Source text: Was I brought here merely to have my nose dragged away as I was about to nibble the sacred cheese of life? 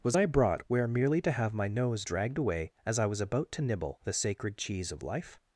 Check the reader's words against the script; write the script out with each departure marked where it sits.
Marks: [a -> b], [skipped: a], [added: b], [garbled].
Was I brought [here -> where] merely to have my nose dragged away as I was about to nibble the sacred cheese of life?